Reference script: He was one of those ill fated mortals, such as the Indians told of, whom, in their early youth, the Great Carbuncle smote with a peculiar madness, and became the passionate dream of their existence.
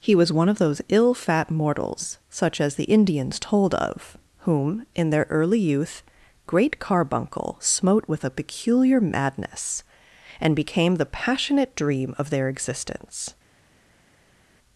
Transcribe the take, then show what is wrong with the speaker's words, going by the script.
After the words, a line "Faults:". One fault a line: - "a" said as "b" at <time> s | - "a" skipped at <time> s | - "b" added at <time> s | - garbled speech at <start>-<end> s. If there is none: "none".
He was one of those ill fat mortals, such as the Indians told of, whom, in their early youth, Great Carbuncle smote with a peculiar madness, and became the passionate dream of their existence.
Faults:
- "fated" said as "fat" at 1.1 s
- "the" skipped at 6.0 s